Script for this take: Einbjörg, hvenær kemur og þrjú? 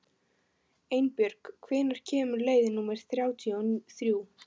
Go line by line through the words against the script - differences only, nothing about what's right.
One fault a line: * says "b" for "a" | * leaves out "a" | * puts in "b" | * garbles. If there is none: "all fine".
* puts in "leið númer þrjátíu"